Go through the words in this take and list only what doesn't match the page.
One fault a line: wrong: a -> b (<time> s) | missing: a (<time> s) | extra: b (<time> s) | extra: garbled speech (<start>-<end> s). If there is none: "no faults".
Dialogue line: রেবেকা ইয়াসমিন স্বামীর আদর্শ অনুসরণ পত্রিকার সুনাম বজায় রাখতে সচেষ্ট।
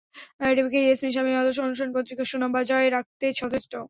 no faults